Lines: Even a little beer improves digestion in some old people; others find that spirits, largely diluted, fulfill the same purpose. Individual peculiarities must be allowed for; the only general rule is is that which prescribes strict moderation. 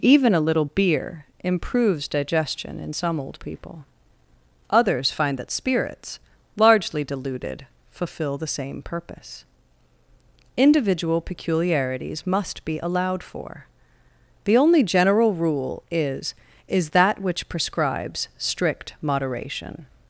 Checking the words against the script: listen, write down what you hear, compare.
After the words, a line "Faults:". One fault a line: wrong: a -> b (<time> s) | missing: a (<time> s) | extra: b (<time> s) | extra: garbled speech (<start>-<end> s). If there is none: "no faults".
Even a little beer improves digestion in some old people; others find that spirits, largely diluted, fulfill the same purpose. Individual peculiarities must be allowed for; the only general rule is is that which prescribes strict moderation.
Faults:
no faults